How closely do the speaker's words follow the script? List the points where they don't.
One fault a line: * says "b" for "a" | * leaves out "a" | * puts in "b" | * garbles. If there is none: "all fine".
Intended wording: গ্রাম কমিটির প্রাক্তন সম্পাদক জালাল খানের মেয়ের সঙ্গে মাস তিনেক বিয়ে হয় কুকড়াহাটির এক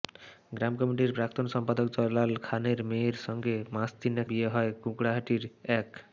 all fine